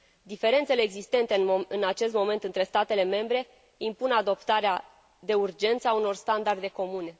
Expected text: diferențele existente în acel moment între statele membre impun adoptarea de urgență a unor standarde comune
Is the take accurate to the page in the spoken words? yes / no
no